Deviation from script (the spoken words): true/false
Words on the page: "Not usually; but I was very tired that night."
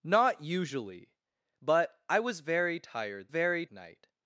true